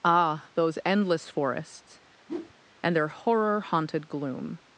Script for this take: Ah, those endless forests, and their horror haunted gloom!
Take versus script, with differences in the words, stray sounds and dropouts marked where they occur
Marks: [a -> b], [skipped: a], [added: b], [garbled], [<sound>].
Ah, those endless forests, [whoosh] and their horror haunted gloom!